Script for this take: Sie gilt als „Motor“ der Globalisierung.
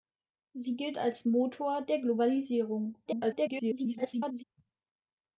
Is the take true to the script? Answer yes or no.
no